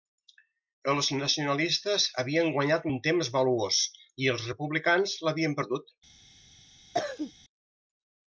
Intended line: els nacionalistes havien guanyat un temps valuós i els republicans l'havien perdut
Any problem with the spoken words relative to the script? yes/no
no